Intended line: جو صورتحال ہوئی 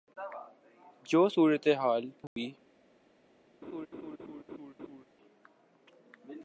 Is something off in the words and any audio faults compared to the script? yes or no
yes